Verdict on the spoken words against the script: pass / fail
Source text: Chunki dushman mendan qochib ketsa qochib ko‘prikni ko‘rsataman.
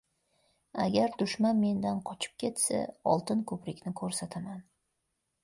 fail